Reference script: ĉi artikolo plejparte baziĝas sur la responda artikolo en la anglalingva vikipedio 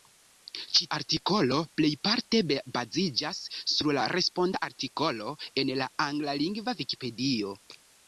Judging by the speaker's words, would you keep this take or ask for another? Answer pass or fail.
pass